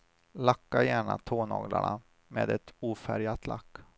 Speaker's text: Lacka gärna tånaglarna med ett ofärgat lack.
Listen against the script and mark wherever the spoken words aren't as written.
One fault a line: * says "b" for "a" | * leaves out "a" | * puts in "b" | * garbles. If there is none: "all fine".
all fine